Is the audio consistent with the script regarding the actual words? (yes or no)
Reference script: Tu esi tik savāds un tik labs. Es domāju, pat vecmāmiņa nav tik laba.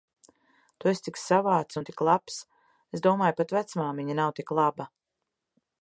yes